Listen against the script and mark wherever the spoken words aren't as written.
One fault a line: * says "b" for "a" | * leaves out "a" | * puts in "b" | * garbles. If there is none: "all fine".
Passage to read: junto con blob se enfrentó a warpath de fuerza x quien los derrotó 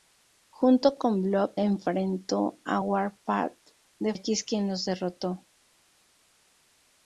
* leaves out "se"
* leaves out "fuerza"